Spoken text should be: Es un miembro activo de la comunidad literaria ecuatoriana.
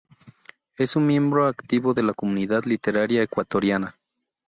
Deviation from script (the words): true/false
false